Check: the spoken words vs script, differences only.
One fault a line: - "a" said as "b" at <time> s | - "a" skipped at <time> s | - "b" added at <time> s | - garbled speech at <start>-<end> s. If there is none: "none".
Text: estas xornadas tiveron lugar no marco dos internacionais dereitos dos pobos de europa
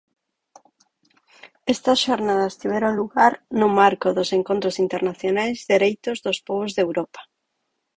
- "encontros" added at 4.4 s